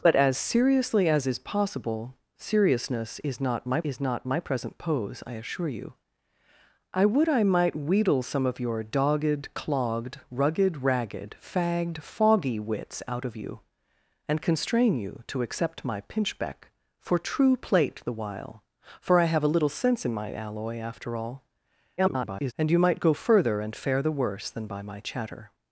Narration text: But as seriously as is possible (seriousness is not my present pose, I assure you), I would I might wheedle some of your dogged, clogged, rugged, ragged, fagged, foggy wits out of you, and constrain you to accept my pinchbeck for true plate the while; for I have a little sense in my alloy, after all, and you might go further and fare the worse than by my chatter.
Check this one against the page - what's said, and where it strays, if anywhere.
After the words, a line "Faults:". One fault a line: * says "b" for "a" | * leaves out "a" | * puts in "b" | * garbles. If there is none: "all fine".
But as seriously as is possible (seriousness is not my is not my present pose, I assure you), I would I might wheedle some of your dogged, clogged, rugged, ragged, fagged, foggy wits out of you, and constrain you to accept my pinchbeck for true plate the while; for I have a little sense in my alloy, after all, [garbled] and you might go further and fare the worse than by my chatter.
Faults:
* puts in "is not my"
* garbles